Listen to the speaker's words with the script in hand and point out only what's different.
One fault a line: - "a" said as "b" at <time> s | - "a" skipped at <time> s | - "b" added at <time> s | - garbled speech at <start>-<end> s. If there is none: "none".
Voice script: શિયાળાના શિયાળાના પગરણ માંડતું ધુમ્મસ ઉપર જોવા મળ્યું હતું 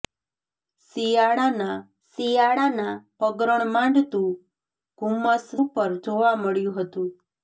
none